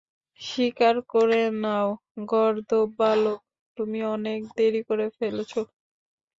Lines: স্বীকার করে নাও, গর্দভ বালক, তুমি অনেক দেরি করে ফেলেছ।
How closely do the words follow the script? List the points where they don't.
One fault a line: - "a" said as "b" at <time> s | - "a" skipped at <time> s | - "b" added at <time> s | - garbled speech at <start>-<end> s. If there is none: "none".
none